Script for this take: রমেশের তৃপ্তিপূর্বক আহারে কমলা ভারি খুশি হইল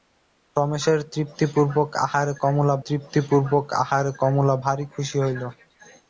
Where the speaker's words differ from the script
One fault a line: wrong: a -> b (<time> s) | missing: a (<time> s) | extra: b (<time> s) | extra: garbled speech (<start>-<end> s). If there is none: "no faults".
extra: তৃপ্তিপূর্বক আহারে কমলা (2.8 s)